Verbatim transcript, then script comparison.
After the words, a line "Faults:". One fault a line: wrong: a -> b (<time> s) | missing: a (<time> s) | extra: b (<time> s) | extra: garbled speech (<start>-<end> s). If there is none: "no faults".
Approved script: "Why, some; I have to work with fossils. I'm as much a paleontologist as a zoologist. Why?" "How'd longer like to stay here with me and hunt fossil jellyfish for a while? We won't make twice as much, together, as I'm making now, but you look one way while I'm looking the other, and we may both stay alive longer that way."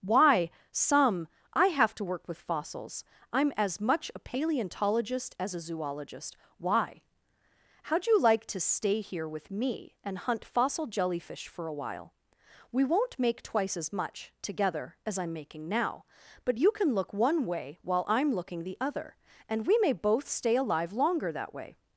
"Why, some; I have to work with fossils. I'm as much a paleontologist as a zoologist. Why?" "How'd you like to stay here with me and hunt fossil jellyfish for a while? We won't make twice as much, together, as I'm making now, but you can look one way while I'm looking the other, and we may both stay alive longer that way."
Faults:
wrong: longer -> you (8.1 s)
extra: can (16.7 s)